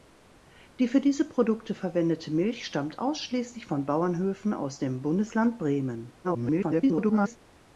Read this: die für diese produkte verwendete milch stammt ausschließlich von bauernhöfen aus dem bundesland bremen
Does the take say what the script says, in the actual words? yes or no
no